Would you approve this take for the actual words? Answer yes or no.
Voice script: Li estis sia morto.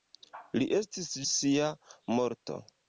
yes